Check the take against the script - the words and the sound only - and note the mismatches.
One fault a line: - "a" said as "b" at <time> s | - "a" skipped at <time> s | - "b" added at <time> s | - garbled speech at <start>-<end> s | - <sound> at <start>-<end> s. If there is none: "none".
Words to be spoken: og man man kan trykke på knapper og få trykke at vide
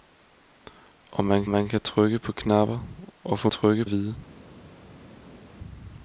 none